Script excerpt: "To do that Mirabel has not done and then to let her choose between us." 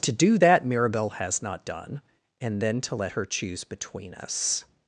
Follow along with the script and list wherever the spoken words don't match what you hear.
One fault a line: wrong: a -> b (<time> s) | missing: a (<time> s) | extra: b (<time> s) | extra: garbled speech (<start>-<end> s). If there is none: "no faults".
no faults